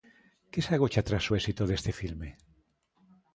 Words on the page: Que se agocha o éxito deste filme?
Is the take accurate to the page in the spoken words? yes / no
no